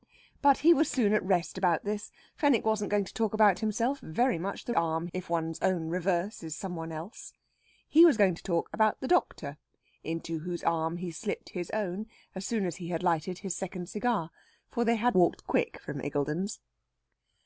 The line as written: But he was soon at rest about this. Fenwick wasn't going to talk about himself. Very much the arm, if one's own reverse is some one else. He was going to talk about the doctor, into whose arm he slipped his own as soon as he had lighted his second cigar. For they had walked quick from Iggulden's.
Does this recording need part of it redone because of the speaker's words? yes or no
no